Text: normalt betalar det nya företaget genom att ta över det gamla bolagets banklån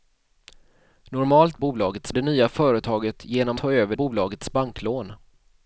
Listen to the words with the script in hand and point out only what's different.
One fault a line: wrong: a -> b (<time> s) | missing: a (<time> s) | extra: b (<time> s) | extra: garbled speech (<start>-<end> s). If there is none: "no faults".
wrong: betalar -> bolagets (1.6 s)
missing: att (3.6 s)
missing: det gamla (4.0 s)